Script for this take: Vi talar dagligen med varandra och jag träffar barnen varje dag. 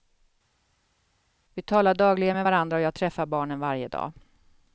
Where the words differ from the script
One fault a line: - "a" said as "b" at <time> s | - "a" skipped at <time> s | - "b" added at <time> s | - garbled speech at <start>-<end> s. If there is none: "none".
none